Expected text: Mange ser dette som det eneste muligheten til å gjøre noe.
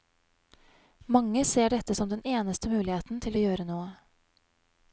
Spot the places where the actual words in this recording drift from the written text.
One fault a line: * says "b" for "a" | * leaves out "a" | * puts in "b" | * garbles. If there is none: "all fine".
* says "den" for "det"